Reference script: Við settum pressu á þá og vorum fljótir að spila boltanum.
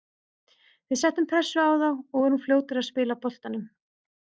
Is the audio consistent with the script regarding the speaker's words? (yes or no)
yes